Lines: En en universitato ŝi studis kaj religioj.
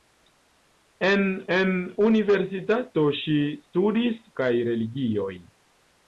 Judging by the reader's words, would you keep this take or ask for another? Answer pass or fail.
pass